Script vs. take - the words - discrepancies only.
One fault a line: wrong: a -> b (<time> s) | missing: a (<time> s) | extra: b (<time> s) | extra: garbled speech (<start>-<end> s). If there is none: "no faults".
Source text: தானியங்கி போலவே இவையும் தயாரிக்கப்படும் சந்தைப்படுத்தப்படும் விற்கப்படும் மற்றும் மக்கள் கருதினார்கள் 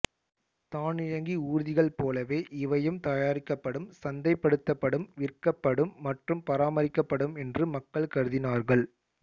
extra: ஊர்திகள் (1.5 s)
extra: பராமரிக்கப்படும் என்று (6.5 s)